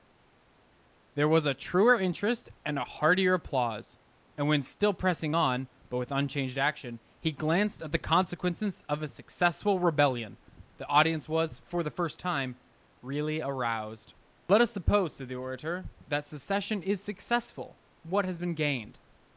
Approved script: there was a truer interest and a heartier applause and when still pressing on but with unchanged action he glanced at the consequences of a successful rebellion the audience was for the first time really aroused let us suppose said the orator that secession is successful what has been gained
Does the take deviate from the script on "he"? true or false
false